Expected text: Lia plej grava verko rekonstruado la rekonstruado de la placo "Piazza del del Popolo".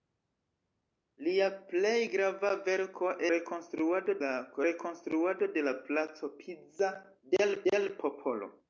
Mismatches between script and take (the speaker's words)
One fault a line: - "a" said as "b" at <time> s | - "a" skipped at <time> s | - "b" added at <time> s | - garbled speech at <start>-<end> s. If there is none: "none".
none